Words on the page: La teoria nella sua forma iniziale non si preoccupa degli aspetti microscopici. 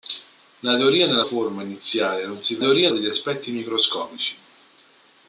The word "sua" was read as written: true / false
false